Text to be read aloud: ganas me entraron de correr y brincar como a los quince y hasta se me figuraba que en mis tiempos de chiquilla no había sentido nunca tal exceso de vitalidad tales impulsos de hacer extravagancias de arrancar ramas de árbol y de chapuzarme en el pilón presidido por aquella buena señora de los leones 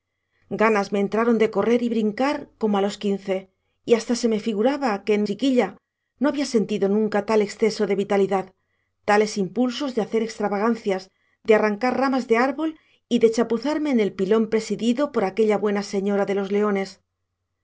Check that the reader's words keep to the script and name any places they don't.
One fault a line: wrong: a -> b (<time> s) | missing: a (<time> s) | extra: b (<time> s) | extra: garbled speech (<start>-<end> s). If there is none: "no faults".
missing: mis tiempos de (5.2 s)